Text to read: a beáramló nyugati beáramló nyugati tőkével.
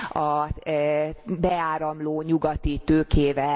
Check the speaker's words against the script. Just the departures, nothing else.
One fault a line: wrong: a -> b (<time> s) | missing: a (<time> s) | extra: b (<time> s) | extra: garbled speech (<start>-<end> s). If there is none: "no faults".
missing: beáramló nyugati (2.8 s)